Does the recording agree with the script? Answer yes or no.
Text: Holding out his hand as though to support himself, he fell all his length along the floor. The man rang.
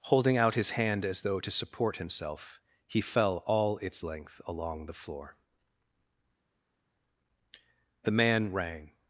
no